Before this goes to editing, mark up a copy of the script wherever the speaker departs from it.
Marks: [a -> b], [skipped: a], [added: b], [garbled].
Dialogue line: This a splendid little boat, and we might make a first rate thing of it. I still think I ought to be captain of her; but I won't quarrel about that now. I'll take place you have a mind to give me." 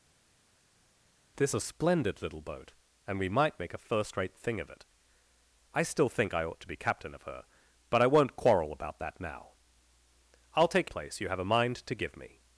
This a splendid little boat, and we might make a first rate thing of it. I still think I ought to be captain of her; but I won't quarrel about that now. I'll take place you have a mind to give me."